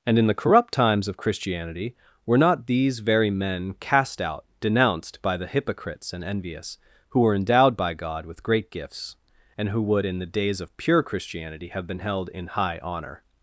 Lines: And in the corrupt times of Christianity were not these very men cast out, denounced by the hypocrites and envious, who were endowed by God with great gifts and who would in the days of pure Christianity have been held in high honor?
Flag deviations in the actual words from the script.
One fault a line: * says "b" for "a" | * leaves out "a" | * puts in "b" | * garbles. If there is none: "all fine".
all fine